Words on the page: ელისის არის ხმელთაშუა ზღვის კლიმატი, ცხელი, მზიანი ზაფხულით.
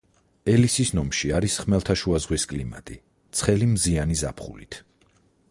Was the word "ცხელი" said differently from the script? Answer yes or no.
no